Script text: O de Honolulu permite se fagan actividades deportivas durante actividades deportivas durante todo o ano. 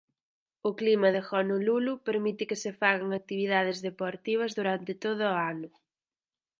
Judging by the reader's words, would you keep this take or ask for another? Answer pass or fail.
fail